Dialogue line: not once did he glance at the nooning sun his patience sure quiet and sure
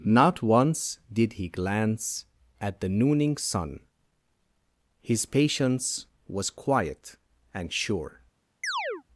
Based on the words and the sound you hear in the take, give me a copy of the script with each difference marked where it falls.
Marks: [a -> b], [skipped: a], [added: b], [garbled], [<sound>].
not once did he glance at the nooning sun his patience [sure -> was] quiet and sure [chirp]